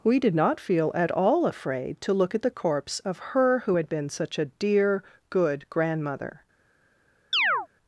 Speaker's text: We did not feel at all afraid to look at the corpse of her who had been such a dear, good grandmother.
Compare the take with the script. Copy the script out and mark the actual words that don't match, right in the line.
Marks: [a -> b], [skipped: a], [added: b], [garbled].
We did not feel at all afraid to look at the corpse of her who had been such a dear, good grandmother.